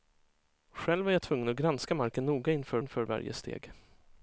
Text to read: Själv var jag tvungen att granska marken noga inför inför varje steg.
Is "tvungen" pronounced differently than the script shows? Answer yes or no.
no